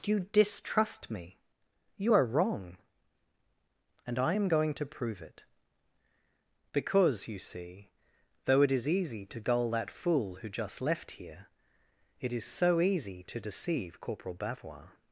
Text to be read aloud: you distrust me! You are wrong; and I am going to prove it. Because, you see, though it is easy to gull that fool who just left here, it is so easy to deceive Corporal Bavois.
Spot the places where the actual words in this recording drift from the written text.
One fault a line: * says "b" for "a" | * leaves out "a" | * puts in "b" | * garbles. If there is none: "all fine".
all fine